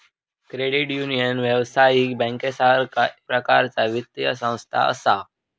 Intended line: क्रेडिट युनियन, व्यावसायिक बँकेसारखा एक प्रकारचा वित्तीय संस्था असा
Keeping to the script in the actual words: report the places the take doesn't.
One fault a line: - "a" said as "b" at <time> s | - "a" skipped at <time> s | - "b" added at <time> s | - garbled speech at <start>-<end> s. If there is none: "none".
- "एक" skipped at 3.1 s